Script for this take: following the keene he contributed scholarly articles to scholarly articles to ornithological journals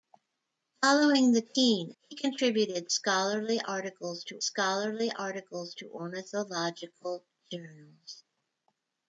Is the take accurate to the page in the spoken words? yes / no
yes